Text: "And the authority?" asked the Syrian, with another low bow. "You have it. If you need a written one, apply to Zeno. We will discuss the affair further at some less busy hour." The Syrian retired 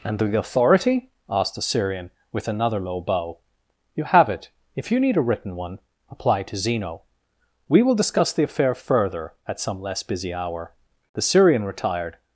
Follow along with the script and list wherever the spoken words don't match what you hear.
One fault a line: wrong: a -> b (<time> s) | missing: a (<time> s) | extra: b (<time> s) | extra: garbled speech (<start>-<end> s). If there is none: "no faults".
no faults